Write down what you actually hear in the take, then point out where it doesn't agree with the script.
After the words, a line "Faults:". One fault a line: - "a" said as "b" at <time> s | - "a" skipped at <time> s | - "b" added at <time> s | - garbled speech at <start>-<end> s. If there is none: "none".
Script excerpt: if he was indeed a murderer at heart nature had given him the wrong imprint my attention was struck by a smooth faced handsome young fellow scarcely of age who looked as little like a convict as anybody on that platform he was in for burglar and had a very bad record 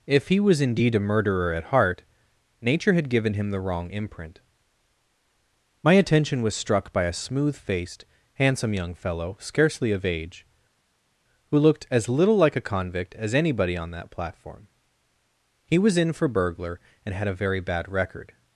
if he was indeed a murderer at heart nature had given him the wrong imprint my attention was struck by a smooth faced handsome young fellow scarcely of age who looked as little like a convict as anybody on that platform he was in for burglar and had a very bad record
Faults:
none